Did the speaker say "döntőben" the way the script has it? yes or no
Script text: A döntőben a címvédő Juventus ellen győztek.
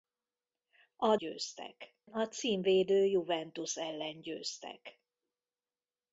no